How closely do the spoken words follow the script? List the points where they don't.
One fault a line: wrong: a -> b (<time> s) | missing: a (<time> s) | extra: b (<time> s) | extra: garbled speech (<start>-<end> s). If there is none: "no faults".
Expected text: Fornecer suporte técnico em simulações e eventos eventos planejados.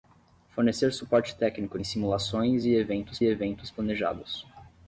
no faults